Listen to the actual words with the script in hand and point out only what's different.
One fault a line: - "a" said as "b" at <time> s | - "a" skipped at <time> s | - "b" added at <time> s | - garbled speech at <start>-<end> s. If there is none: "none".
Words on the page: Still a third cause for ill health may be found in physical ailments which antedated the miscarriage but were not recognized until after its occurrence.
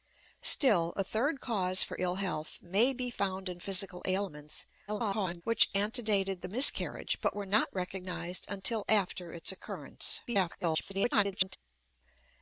- garbled speech at 4.9-5.4 s
- garbled speech at 10.3-11.6 s